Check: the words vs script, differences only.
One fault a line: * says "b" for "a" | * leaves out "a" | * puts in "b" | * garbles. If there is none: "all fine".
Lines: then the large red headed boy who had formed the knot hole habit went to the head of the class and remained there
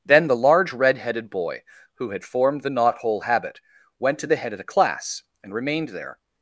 all fine